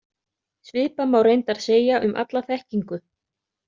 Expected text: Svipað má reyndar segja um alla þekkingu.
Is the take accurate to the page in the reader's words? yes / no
yes